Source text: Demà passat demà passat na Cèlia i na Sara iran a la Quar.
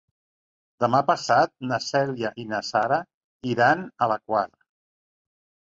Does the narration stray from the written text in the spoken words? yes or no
yes